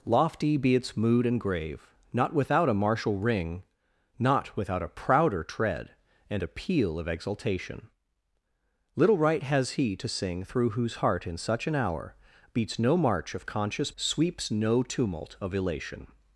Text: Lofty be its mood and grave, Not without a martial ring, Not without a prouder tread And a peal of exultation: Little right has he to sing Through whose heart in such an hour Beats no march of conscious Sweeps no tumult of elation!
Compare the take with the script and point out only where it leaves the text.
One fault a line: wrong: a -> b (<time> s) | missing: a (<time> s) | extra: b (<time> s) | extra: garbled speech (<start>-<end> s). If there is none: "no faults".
no faults